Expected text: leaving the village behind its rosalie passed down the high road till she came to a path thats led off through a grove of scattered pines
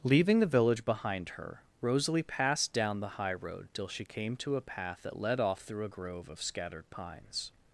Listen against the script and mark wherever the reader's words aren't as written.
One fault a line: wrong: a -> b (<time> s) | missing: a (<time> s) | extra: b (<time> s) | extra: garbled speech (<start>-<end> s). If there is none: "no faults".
wrong: its -> her (1.3 s)
wrong: thats -> that (5.0 s)